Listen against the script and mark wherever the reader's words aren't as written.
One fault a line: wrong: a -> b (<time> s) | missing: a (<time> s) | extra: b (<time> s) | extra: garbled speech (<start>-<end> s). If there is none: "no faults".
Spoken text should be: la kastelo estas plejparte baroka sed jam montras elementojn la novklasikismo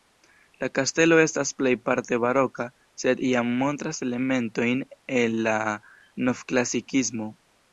extra: el (5.2 s)